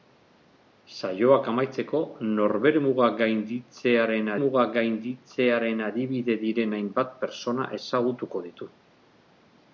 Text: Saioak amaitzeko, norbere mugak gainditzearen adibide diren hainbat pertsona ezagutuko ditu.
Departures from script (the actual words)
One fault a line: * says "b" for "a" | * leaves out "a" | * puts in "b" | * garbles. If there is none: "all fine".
* puts in "mugak gainditzearen"